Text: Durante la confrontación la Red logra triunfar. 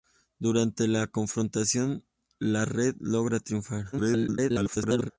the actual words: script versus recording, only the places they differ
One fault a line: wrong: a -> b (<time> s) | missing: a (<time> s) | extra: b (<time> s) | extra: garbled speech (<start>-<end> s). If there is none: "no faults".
extra: garbled speech (3.9-5.1 s)